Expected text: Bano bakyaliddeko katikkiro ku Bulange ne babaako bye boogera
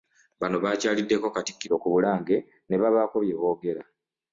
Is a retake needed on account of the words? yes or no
no